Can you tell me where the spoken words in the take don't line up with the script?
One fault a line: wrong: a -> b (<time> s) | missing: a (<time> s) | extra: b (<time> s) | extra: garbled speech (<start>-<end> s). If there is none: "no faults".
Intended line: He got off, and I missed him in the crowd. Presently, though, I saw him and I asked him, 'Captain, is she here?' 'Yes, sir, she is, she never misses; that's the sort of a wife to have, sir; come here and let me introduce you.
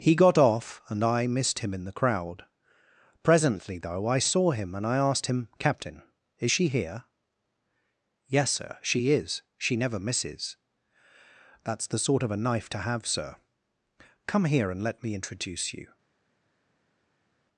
wrong: wife -> knife (12.4 s)